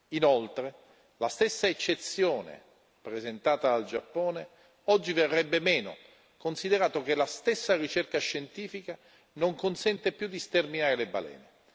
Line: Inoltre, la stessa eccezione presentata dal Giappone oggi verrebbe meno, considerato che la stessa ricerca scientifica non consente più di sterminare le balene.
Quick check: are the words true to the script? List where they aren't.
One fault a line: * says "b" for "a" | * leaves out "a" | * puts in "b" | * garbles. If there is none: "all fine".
all fine